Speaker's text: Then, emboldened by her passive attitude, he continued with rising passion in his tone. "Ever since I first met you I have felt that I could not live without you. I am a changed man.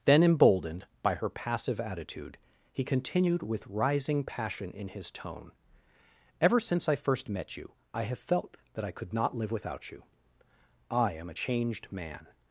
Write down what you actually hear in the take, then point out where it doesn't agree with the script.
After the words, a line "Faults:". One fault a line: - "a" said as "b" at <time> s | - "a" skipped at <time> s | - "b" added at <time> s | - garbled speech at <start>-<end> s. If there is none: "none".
Then, emboldened by her passive attitude, he continued with rising passion in his tone. "Ever since I first met you I have felt that I could not live without you. I am a changed man.
Faults:
none